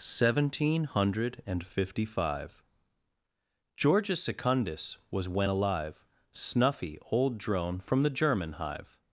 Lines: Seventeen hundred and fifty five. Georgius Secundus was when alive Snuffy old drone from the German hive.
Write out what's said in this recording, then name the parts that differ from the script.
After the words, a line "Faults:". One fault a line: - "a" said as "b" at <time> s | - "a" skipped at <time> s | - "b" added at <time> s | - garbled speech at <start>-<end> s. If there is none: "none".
Seventeen hundred and fifty five. Georgius Secundus was when alive Snuffy old drone from the German hive.
Faults:
none